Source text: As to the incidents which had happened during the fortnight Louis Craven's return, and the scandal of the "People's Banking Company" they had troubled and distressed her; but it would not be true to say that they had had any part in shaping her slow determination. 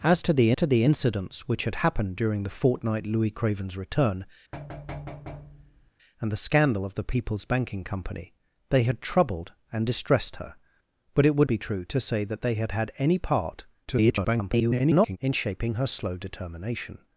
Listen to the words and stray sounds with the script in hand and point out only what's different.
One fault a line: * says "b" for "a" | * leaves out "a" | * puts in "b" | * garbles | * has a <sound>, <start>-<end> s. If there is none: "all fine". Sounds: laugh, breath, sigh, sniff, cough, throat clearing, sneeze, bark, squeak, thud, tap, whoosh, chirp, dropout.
* puts in "to the"
* has a thud, 4.5-5.9 s
* leaves out "not"
* garbles